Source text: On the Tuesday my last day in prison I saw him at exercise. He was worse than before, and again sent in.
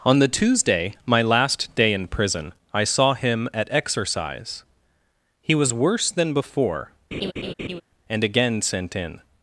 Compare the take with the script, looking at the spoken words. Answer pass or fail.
pass